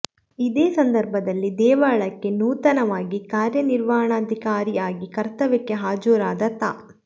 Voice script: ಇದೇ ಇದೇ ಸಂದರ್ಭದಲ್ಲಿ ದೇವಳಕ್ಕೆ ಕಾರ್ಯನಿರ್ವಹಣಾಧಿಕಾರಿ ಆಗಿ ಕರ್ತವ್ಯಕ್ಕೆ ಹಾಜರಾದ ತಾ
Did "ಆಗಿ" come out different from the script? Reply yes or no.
no